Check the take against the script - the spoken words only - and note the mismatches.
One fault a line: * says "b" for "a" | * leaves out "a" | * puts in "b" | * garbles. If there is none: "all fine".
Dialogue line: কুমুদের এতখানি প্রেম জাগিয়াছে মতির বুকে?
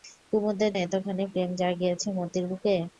all fine